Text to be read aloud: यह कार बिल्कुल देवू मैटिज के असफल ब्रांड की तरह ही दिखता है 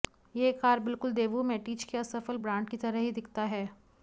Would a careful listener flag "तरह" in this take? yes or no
no